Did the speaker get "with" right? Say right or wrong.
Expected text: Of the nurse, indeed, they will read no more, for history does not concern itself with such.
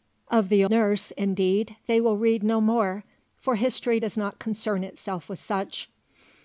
right